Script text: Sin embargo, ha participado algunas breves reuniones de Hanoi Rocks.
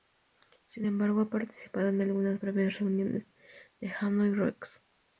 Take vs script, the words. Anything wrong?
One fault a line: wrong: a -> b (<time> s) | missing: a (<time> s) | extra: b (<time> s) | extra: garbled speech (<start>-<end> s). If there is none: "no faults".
extra: en (1.9 s)